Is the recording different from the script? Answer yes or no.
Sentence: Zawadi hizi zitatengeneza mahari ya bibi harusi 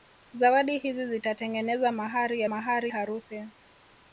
yes